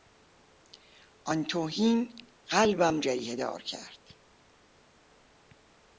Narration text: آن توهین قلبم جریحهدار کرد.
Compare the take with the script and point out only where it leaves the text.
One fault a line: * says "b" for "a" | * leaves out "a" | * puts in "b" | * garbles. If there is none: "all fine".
all fine